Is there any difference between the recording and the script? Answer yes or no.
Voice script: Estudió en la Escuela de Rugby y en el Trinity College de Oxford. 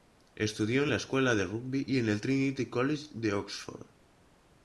no